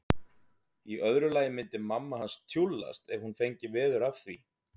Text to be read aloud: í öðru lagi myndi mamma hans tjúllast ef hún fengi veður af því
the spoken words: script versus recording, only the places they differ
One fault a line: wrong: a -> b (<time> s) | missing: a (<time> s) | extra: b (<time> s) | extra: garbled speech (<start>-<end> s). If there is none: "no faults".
no faults